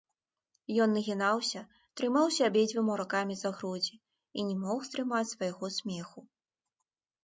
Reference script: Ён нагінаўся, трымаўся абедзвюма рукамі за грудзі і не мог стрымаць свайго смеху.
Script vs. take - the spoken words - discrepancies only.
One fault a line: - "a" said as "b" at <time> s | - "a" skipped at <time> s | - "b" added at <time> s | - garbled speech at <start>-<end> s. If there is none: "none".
none